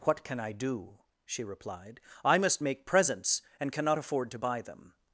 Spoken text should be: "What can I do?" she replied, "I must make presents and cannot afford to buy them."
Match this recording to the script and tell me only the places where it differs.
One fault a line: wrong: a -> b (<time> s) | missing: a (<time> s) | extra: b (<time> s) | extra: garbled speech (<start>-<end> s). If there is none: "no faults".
no faults